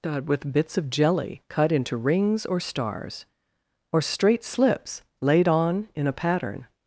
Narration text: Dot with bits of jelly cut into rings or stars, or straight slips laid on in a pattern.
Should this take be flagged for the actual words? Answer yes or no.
no